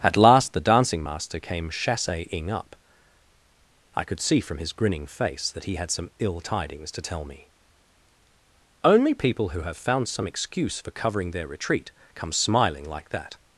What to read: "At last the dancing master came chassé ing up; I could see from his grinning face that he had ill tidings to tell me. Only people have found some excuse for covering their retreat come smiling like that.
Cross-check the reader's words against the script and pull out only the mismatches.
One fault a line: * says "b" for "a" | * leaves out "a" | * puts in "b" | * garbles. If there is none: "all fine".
* puts in "some"
* puts in "who"